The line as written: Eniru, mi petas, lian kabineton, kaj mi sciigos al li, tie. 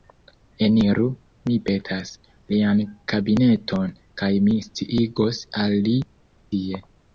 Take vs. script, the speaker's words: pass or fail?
pass